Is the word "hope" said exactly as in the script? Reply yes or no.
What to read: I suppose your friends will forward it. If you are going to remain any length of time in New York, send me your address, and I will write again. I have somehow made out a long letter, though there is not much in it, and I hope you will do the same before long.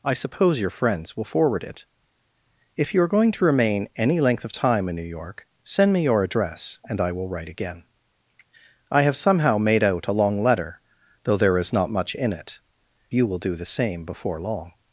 no